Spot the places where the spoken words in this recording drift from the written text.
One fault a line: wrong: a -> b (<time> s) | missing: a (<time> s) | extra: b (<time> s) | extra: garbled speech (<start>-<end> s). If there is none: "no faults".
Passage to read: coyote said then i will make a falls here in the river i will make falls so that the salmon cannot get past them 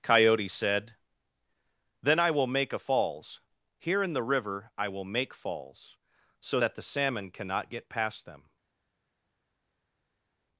no faults